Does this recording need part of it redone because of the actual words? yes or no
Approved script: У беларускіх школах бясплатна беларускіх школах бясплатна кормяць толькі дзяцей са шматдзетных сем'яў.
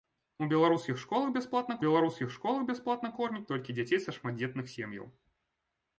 no